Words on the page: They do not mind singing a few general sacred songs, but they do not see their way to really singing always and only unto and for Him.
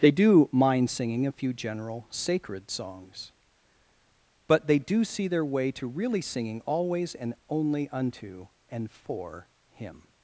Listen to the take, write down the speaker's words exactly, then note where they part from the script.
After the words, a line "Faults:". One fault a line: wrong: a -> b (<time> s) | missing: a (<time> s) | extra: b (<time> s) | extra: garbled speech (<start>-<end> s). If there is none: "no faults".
They do mind singing a few general sacred songs, but they do see their way to really singing always and only unto and for Him.
Faults:
missing: not (0.5 s)
missing: not (5.0 s)